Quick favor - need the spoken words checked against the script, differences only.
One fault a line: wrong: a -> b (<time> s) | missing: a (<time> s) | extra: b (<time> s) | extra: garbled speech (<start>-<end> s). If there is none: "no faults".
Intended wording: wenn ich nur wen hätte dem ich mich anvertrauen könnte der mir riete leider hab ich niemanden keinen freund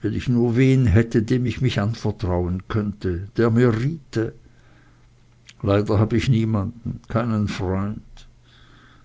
no faults